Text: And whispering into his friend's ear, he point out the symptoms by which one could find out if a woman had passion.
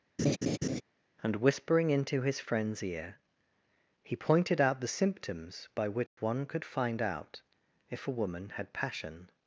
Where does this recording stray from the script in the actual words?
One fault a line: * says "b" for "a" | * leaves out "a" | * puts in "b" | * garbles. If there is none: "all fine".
* says "pointed" for "point"